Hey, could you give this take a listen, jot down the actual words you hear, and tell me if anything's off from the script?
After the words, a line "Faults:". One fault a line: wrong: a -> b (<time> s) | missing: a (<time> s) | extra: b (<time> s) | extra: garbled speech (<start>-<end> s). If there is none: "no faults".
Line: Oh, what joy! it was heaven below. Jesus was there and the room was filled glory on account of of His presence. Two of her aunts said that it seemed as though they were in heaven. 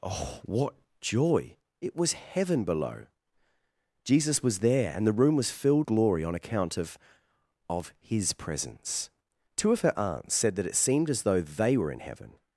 Oh, what joy! it was heaven below. Jesus was there and the room was filled glory on account of of His presence. Two of her aunts said that it seemed as though they were in heaven.
Faults:
no faults